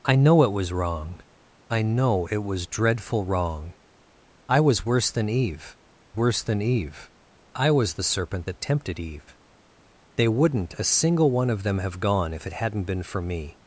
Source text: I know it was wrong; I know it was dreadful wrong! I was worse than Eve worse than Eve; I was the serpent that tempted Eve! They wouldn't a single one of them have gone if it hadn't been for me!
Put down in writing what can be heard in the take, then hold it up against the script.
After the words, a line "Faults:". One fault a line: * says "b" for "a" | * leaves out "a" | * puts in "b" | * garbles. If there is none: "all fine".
I know it was wrong; I know it was dreadful wrong! I was worse than Eve worse than Eve; I was the serpent that tempted Eve! They wouldn't a single one of them have gone if it hadn't been for me!
Faults:
all fine